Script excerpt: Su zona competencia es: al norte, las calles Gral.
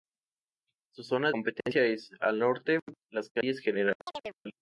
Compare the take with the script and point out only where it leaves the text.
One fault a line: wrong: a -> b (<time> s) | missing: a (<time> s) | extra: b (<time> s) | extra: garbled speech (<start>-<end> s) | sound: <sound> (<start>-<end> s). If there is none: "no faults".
sound: chirp (4.1-4.4 s)